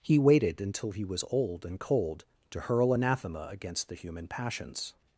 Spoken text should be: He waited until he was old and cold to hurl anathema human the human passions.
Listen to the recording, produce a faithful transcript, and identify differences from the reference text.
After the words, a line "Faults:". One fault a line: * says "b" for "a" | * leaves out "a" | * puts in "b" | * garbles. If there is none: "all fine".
He waited until he was old and cold to hurl anathema against the human passions.
Faults:
* says "against" for "human"